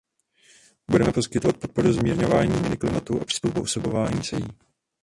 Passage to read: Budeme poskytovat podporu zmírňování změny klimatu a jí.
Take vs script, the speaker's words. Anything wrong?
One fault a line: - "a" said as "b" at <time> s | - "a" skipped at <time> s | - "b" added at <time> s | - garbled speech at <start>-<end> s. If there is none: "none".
- "přizpůsobování se" added at 3.2 s